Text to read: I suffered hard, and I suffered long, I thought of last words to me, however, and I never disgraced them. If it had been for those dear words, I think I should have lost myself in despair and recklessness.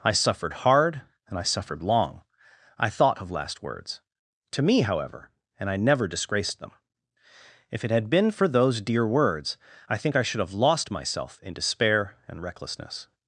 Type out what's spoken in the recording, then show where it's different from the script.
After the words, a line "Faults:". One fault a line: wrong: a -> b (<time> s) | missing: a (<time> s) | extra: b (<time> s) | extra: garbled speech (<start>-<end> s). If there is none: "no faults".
I suffered hard, and I suffered long, I thought of last words to me, however, and I never disgraced them. If it had been for those dear words, I think I should have lost myself in despair and recklessness.
Faults:
no faults